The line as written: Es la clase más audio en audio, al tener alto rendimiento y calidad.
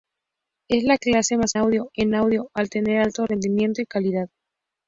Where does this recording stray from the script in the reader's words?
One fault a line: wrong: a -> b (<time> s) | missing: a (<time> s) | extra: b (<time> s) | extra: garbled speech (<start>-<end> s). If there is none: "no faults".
no faults